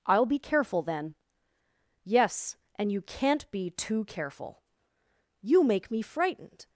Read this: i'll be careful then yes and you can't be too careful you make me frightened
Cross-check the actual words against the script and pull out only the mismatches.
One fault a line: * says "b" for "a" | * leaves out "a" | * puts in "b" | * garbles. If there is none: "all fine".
all fine